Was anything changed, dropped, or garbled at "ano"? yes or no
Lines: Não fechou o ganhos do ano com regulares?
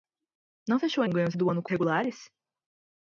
no